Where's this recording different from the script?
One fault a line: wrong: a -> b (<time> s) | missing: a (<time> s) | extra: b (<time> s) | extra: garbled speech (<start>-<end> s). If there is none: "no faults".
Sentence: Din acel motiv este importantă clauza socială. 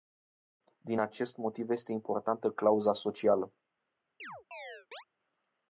wrong: acel -> acest (1.0 s)